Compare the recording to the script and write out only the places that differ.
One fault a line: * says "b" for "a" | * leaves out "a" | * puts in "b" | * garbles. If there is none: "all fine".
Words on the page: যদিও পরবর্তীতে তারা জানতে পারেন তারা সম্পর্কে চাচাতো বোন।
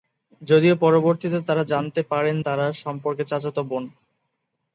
all fine